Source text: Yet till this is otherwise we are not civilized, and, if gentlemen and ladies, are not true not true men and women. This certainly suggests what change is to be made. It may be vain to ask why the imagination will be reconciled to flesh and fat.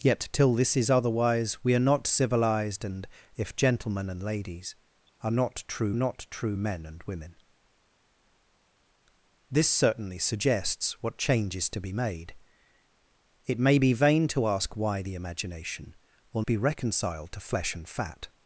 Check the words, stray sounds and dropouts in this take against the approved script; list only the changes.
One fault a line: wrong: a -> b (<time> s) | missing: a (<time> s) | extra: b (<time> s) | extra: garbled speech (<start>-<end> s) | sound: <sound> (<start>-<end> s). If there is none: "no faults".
no faults